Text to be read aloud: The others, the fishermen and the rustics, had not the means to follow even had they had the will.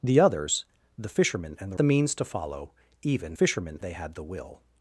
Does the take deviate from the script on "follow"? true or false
false